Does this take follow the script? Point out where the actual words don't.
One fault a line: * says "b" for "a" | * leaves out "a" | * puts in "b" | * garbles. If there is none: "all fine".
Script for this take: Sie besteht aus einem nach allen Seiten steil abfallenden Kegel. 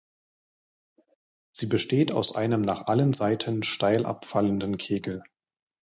all fine